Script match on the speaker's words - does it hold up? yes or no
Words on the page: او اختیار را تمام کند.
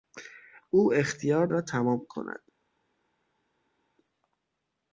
yes